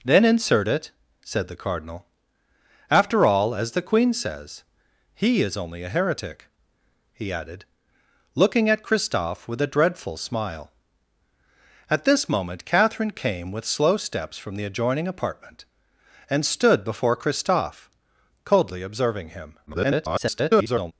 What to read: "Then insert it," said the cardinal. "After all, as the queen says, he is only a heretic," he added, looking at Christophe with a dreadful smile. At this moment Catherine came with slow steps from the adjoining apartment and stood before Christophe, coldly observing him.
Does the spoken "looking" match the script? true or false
true